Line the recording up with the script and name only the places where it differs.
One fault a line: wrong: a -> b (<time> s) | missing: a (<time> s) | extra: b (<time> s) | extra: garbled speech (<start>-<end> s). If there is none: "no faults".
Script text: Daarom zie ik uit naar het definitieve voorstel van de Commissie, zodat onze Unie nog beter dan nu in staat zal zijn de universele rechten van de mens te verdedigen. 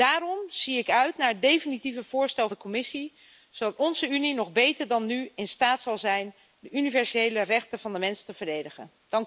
missing: van (2.5 s)